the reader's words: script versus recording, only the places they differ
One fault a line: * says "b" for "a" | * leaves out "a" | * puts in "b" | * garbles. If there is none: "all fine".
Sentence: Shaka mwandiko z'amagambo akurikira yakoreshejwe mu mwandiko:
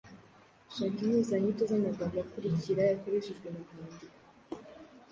* says "impuzanyito" for "mwandiko"